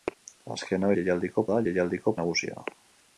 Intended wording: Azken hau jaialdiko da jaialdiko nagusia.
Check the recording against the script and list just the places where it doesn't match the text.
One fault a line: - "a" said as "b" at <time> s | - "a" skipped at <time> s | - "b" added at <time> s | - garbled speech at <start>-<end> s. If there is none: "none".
none